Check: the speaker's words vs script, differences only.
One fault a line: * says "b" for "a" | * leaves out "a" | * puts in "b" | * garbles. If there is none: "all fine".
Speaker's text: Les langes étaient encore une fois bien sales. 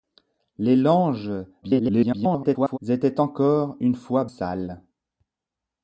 * garbles
* leaves out "bien"